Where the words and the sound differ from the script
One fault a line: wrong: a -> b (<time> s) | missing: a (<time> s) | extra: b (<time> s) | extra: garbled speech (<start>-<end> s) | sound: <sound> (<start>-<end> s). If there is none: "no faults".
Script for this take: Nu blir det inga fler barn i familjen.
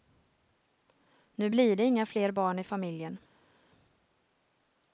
no faults